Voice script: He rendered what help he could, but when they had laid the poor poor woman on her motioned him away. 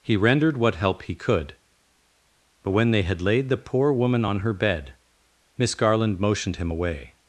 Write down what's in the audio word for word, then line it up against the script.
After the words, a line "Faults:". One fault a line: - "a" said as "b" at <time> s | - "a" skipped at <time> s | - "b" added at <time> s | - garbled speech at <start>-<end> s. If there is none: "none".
He rendered what help he could, but when they had laid the poor woman on her bed, Miss Garland motioned him away.
Faults:
- "poor" skipped at 3.9 s
- "bed Miss Garland" added at 4.5 s